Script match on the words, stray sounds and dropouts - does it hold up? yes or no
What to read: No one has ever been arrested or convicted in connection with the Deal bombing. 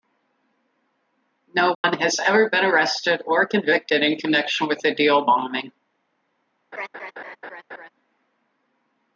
no